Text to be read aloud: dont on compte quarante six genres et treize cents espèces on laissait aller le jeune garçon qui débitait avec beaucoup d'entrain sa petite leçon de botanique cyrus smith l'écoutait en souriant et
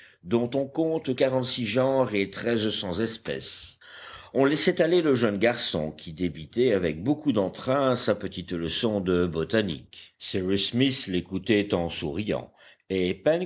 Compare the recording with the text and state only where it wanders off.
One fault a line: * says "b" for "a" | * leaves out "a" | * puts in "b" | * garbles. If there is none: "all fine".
all fine